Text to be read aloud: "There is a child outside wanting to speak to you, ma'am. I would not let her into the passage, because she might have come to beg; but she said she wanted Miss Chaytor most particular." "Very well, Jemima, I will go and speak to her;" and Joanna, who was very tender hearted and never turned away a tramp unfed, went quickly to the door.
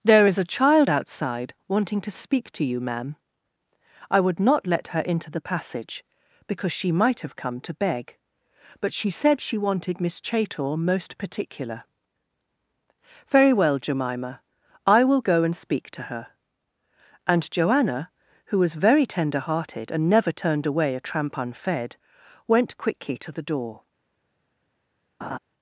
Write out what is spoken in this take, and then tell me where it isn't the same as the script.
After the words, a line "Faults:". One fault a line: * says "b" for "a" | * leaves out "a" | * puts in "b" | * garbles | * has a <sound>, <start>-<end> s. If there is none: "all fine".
"There is a child outside wanting to speak to you, ma'am. I would not let her into the passage, because she might have come to beg; but she said she wanted Miss Chaytor most particular." "Very well, Jemima, I will go and speak to her;" and Joanna, who was very tender hearted and never turned away a tramp unfed, went quickly to the door.
Faults:
* has a laugh, 25.2-25.4 s